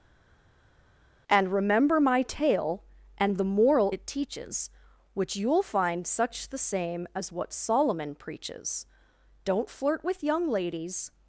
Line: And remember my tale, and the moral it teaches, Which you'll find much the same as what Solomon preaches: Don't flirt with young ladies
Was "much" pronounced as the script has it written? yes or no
no